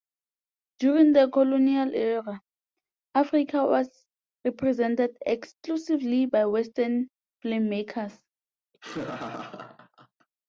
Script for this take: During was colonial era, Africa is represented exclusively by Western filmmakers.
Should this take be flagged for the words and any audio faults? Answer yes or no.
yes